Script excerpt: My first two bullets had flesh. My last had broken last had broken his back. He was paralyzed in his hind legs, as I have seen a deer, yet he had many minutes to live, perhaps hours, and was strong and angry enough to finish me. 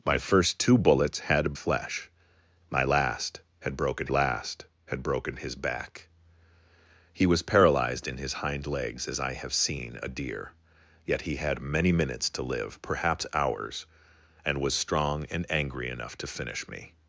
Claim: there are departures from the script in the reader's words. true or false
false